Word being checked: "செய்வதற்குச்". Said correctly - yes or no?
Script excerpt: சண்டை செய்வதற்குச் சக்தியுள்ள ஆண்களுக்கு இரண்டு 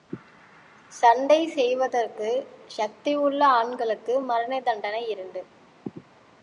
yes